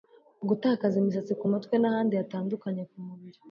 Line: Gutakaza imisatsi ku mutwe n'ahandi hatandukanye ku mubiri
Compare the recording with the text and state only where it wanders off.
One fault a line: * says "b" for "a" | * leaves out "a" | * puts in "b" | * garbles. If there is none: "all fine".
all fine